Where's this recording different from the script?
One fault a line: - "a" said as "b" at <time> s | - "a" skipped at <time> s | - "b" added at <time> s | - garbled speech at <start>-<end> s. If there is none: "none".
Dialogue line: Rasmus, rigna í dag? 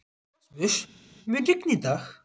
- "mun" added at 1.3 s